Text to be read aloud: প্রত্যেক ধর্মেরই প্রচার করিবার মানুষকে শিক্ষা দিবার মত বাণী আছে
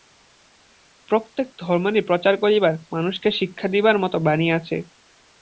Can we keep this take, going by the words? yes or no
yes